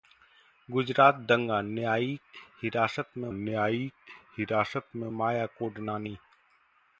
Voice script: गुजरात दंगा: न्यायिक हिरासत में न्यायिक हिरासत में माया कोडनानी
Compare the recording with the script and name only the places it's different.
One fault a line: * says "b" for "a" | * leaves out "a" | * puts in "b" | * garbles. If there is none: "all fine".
all fine